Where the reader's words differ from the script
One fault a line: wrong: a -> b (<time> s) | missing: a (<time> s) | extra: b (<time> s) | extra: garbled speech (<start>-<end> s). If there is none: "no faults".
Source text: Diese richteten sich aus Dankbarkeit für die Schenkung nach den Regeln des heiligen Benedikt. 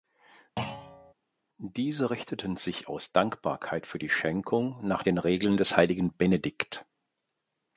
no faults